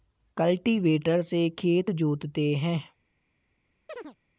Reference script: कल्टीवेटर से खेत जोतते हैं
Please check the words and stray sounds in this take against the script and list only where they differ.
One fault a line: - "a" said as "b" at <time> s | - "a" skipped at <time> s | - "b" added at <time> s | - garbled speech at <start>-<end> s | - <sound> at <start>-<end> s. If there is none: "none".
- chirp at 3.9-4.2 s